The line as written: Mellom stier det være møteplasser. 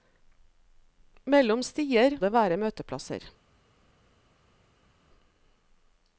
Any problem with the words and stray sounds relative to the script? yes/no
no